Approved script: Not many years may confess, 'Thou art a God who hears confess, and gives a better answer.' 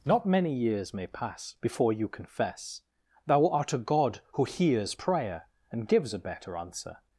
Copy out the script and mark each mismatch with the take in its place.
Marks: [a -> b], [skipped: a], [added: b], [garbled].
Not many years may [added: pass before you] confess, 'Thou art a God who hears [confess, -> prayer] and gives a better answer.'